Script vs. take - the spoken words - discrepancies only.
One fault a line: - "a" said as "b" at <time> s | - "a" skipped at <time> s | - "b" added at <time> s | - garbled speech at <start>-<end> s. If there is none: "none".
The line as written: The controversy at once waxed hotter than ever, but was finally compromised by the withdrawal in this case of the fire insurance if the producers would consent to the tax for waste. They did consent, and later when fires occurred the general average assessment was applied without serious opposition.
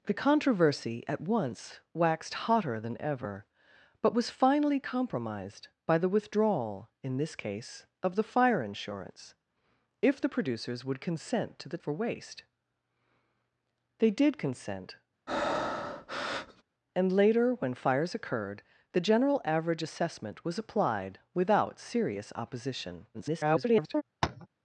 - "tax" skipped at 11.8 s
- garbled speech at 23.1-24.0 s